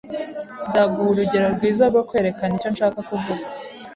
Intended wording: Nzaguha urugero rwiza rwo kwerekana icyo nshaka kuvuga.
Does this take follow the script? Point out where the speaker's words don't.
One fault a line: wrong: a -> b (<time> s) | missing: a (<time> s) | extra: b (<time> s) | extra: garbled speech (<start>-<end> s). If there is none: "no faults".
no faults